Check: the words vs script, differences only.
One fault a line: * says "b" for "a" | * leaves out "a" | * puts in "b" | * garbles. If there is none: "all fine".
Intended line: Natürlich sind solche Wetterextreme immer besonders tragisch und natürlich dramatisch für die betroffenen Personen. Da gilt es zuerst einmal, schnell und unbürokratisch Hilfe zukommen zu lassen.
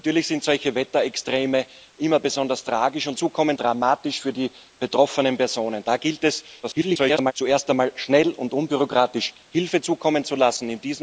* says "zukommen" for "natürlich"
* garbles